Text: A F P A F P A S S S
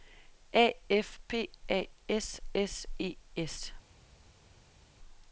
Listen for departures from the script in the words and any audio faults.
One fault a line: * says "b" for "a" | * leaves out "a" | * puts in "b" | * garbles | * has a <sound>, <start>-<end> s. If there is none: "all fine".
* says "S" for "F P A"
* says "E" for "S"